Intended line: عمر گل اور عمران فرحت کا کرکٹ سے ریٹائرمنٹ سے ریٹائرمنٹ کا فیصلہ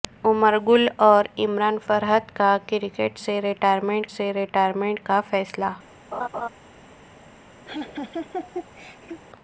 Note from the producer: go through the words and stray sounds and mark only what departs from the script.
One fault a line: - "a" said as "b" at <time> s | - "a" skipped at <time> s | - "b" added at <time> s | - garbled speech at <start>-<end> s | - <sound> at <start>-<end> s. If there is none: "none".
- laugh at 6.1-6.5 s
- laugh at 7.7-9.2 s